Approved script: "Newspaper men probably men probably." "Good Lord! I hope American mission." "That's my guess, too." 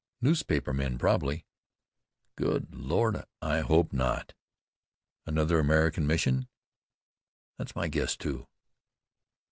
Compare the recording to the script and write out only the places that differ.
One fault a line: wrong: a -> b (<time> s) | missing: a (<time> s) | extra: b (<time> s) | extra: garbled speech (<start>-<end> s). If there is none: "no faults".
missing: men probably (1.4 s)
extra: not Another (3.9 s)